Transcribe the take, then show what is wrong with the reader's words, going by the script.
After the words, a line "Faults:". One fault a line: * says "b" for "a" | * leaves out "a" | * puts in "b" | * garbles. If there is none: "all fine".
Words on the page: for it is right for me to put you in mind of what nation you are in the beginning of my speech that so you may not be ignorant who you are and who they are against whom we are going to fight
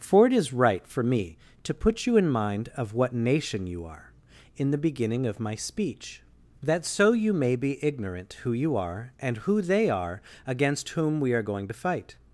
for it is right for me to put you in mind of what nation you are in the beginning of my speech that so you may be ignorant who you are and who they are against whom we are going to fight
Faults:
* leaves out "not"